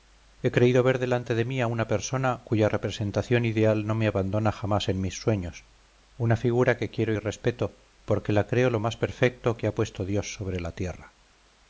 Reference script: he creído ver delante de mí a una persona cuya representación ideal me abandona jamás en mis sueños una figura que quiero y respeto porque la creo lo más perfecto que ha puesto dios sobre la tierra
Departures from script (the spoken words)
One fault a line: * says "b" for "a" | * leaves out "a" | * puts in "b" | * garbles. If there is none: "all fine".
* puts in "no"